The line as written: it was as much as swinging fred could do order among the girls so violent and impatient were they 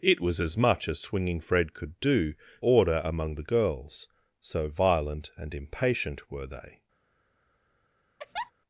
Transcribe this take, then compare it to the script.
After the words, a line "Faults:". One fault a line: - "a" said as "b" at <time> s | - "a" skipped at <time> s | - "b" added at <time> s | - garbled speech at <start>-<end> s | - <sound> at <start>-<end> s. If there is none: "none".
it was as much as swinging fred could do order among the girls so violent and impatient were they
Faults:
- laugh at 8.2-8.5 s